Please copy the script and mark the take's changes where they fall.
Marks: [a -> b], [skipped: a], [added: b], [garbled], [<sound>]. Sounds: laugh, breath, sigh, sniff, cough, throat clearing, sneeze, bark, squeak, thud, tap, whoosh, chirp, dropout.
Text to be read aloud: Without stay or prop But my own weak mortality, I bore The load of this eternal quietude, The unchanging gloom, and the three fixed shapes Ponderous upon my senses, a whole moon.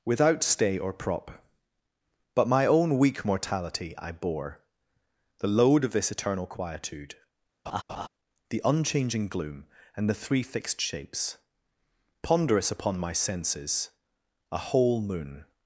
Without stay or prop But my own weak mortality, I bore The load of this eternal quietude, [laugh] The unchanging gloom, and the three fixed shapes Ponderous upon my senses, a whole moon.